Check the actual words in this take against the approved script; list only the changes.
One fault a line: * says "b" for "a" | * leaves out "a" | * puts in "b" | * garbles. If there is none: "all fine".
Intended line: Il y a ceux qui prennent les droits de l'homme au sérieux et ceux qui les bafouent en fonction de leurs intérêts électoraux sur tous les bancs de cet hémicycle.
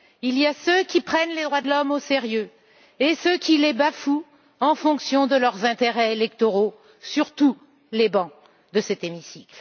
all fine